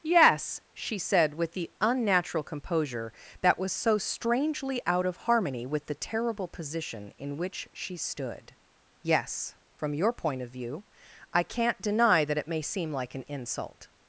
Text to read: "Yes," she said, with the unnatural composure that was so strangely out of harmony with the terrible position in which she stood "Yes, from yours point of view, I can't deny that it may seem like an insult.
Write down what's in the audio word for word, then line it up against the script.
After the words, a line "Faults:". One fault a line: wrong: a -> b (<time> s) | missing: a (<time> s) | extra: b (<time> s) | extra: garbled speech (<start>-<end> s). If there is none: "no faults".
"Yes," she said, with the unnatural composure that was so strangely out of harmony with the terrible position in which she stood "Yes, from your point of view, I can't deny that it may seem like an insult.
Faults:
wrong: yours -> your (9.9 s)